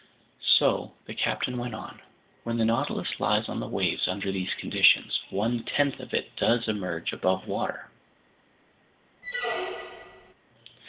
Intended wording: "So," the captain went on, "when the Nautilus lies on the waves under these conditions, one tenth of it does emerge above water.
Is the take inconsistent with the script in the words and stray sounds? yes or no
yes